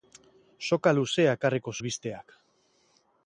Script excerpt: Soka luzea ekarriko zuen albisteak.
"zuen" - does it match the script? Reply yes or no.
no